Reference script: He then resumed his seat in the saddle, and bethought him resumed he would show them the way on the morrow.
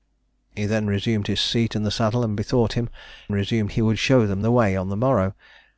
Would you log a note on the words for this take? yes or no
no